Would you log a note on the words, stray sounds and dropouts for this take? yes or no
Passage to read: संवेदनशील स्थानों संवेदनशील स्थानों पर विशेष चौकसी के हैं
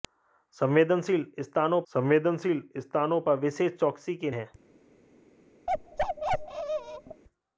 yes